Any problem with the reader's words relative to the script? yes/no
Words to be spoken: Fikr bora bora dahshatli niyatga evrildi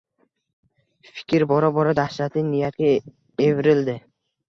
no